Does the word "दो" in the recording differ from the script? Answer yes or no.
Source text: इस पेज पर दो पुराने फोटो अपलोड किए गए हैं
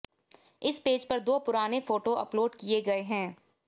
no